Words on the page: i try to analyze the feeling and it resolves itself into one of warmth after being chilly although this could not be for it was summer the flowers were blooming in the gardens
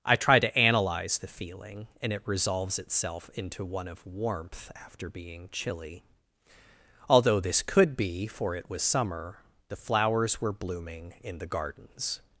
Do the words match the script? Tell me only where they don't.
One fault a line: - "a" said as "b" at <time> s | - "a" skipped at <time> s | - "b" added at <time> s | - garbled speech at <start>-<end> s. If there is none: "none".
- "not" skipped at 8.0 s